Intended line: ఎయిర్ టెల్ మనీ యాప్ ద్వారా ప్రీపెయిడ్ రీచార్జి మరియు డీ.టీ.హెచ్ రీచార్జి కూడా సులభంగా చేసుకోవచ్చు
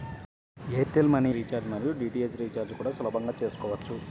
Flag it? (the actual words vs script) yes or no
yes